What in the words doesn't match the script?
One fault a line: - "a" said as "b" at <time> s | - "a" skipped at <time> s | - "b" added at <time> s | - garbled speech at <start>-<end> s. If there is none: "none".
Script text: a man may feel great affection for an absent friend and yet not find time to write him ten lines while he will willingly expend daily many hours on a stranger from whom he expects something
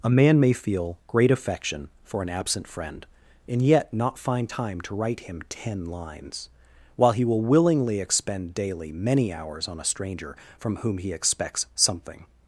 none